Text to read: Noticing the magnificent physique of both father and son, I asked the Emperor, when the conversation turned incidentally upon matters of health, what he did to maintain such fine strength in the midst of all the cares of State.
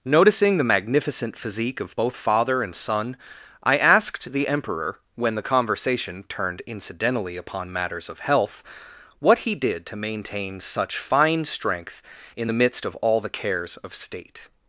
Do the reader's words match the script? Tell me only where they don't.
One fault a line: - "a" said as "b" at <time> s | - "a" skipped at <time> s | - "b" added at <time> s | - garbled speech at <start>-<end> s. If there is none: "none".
none